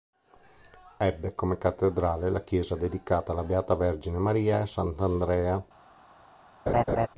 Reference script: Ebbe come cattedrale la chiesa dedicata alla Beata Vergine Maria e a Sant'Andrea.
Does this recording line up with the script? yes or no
yes